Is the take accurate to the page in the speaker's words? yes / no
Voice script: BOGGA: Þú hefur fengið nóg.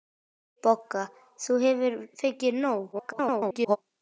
no